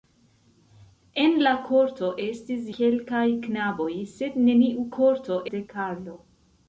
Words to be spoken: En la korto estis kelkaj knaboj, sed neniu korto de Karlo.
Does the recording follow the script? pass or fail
pass